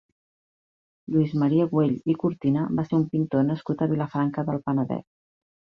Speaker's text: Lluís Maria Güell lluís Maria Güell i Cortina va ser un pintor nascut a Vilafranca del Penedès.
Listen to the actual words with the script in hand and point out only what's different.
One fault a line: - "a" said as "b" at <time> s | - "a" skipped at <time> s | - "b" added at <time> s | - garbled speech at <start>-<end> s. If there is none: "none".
- "lluís Maria Güell" skipped at 1.9 s